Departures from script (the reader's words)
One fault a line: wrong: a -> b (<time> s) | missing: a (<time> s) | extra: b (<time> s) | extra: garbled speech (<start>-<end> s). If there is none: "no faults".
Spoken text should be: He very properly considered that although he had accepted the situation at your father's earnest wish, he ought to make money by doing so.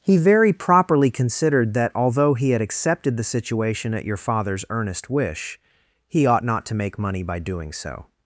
extra: not (6.4 s)